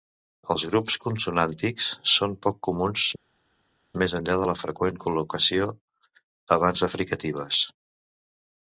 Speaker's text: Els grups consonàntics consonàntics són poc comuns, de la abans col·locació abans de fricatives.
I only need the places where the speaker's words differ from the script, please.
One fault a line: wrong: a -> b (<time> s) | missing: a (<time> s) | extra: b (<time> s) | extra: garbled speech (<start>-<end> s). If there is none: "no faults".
missing: consonàntics (1.9 s)
extra: més enllà (4.1 s)
wrong: abans -> freqüent (4.7 s)